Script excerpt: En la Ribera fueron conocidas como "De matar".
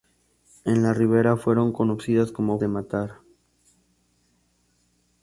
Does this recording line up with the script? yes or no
yes